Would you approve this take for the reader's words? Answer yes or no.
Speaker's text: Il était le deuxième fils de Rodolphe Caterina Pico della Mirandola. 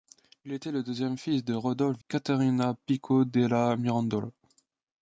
yes